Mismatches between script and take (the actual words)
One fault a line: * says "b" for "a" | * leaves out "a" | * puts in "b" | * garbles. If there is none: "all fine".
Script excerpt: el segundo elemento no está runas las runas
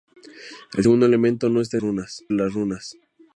all fine